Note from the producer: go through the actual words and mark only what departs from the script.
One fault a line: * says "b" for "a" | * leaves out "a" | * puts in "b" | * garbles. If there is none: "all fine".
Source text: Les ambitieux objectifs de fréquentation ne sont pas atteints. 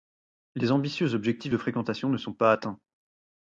all fine